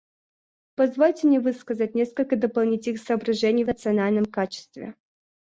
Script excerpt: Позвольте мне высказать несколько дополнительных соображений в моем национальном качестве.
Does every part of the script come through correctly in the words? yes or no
no